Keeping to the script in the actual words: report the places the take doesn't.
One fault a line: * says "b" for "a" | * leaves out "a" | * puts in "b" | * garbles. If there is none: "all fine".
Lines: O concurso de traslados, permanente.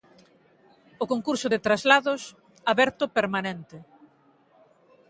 * puts in "aberto"